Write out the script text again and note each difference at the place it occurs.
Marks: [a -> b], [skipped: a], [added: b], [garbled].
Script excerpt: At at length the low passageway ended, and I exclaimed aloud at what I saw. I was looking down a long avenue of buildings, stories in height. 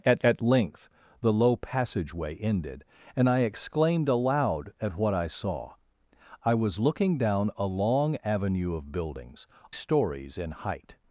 At at length the low passageway ended, and I exclaimed aloud at what I saw. I was looking down a long avenue of buildings, stories in height.